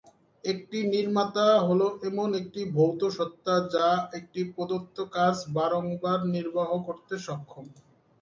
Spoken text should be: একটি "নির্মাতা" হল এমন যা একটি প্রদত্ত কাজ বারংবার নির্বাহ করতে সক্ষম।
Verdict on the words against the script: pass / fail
fail